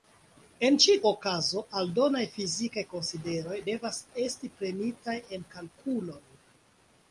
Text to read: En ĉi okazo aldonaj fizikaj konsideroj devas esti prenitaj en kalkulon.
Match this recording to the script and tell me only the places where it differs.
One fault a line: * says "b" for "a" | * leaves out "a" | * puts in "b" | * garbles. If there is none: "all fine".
all fine